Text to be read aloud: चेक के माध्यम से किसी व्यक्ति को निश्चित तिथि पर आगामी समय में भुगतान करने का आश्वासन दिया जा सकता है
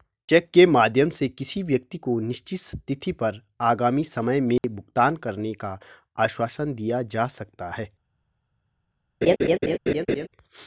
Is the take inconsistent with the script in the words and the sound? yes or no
yes